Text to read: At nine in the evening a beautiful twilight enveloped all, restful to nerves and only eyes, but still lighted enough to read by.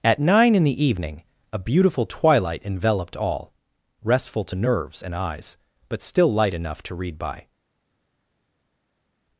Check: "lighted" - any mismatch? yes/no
yes